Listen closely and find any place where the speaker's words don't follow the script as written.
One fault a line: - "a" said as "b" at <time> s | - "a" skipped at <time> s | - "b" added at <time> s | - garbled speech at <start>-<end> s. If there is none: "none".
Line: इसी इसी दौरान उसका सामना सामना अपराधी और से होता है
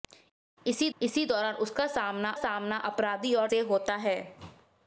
none